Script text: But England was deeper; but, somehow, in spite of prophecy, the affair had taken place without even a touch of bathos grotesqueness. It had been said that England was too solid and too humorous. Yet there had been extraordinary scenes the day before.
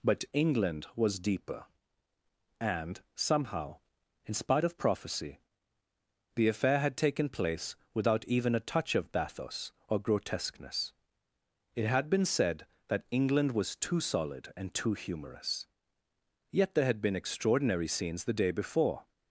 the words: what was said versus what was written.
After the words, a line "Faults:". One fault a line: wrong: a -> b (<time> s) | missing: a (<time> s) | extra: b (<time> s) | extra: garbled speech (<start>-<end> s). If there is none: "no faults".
But England was deeper; and, somehow, in spite of prophecy, the affair had taken place without even a touch of bathos or grotesqueness. It had been said that England was too solid and too humorous. Yet there had been extraordinary scenes the day before.
Faults:
wrong: but -> and (2.6 s)
extra: or (9.9 s)